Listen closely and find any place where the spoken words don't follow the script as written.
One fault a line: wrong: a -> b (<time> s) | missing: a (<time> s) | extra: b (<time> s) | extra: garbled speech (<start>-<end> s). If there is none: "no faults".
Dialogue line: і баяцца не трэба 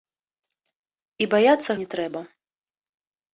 no faults